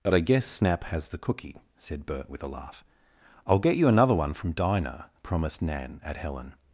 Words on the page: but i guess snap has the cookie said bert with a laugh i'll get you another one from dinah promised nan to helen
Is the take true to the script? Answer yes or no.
no